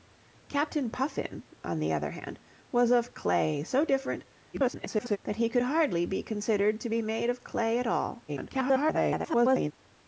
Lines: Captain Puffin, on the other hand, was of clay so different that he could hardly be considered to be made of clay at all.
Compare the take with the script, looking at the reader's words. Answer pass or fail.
fail